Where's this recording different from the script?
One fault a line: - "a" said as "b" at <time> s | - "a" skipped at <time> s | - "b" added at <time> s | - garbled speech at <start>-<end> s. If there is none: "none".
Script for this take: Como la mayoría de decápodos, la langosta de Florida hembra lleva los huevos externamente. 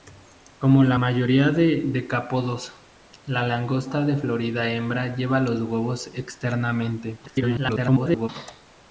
- garbled speech at 7.3-8.3 s